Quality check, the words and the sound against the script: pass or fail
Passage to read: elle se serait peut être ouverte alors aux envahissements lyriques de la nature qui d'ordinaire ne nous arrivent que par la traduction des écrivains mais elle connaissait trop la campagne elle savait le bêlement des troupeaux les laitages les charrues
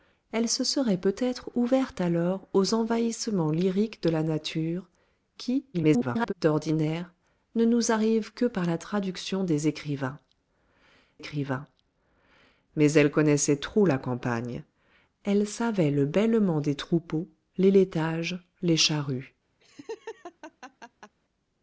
fail